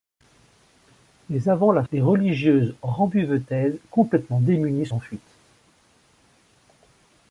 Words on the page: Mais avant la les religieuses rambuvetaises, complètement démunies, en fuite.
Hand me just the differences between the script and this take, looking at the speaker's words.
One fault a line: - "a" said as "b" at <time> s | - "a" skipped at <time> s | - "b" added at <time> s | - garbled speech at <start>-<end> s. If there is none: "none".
none